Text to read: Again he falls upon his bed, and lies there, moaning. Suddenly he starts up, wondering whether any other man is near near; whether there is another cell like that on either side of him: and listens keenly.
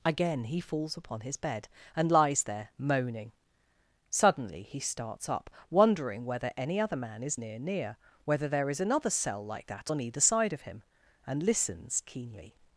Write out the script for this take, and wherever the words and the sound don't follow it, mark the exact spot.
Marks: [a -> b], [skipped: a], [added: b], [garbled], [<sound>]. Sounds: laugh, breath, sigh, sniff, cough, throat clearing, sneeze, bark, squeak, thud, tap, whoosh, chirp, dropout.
Again he falls upon his bed, and lies there, moaning. Suddenly he starts up, wondering whether any other man is near near; whether there is another cell like that on either side of him: and listens keenly.